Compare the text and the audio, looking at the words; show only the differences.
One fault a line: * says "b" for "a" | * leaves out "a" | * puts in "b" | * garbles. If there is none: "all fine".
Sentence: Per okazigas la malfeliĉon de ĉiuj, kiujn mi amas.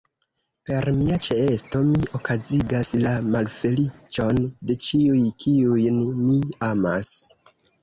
* puts in "mia ĉeesto mi"